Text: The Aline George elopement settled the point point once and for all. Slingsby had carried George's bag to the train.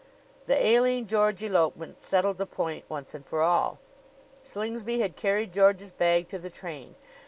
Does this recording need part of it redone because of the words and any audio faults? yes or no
yes